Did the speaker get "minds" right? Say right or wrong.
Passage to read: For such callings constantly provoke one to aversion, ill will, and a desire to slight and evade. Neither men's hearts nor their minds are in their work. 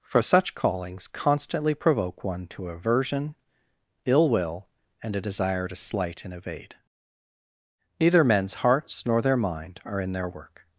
wrong